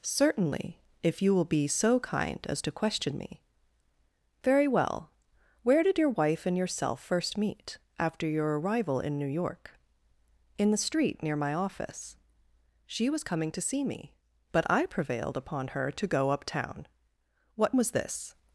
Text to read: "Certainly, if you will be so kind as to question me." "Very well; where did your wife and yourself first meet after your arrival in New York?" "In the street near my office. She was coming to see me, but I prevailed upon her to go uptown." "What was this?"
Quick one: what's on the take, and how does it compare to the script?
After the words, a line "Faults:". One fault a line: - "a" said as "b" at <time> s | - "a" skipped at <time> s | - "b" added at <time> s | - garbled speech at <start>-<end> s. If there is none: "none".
"Certainly, if you will be so kind as to question me." "Very well; where did your wife and yourself first meet after your arrival in New York?" "In the street near my office. She was coming to see me, but I prevailed upon her to go uptown." "What was this?"
Faults:
none